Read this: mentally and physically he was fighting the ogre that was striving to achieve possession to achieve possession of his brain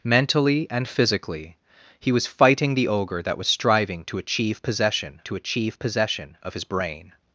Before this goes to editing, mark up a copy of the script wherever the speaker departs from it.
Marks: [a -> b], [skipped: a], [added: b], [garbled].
mentally and physically he was fighting the ogre that was striving to achieve possession to achieve possession of his brain